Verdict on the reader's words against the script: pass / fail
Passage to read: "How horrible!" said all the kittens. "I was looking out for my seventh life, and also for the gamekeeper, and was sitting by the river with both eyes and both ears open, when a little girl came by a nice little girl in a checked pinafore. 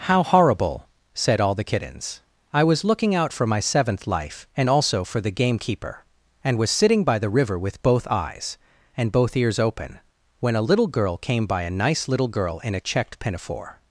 pass